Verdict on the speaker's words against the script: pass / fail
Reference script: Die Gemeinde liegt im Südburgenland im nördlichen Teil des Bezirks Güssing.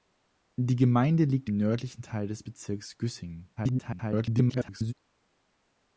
fail